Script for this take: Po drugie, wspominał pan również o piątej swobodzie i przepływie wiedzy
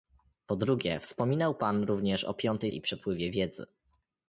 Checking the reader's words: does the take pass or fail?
fail